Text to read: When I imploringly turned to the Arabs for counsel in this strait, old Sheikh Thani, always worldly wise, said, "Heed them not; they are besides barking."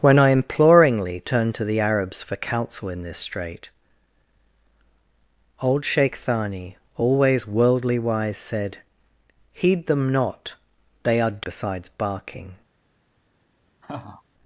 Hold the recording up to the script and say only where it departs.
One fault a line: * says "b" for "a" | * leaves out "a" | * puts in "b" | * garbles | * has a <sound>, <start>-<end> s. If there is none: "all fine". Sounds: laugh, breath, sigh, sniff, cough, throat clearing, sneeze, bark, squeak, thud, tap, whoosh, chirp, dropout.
* has a laugh, 13.8-14.2 s